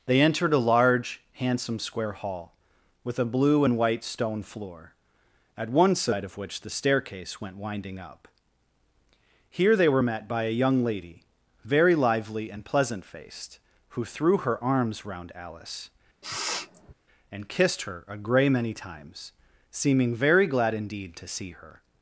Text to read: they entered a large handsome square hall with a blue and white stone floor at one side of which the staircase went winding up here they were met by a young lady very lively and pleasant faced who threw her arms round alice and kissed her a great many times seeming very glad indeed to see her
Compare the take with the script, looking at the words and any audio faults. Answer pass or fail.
fail